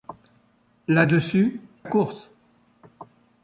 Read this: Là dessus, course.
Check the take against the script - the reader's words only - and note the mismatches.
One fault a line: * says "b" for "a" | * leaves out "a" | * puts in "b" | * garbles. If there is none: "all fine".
all fine